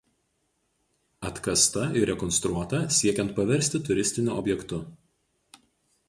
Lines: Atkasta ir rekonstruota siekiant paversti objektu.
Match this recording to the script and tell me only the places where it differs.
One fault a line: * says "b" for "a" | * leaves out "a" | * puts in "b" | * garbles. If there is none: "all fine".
* puts in "turistiniu"